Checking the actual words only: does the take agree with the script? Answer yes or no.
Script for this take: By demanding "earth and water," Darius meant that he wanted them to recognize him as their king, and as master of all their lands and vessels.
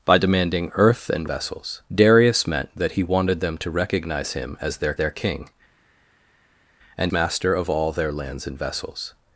no